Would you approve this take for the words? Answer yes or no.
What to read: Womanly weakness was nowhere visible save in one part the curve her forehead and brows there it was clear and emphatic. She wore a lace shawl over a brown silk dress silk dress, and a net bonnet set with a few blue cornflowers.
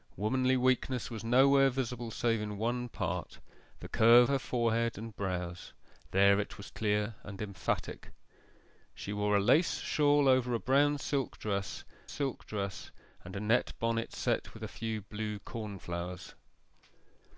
yes